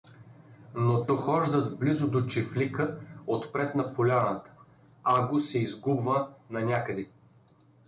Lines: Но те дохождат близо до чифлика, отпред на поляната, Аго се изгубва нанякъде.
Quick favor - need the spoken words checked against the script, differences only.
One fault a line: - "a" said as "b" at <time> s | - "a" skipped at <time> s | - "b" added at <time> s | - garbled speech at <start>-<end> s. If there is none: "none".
- "те" skipped at 1.1 s